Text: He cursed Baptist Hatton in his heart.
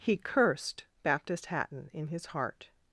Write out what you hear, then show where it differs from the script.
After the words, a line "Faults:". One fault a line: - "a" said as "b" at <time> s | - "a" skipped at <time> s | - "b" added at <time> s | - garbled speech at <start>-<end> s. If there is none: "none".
He cursed Baptist Hatton in his heart.
Faults:
none